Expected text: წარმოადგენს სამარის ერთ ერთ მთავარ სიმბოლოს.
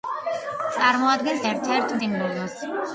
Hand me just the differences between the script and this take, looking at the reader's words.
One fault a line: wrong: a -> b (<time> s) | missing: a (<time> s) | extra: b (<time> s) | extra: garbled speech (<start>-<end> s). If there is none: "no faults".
missing: სამარის (1.4 s)
missing: მთავარ (2.0 s)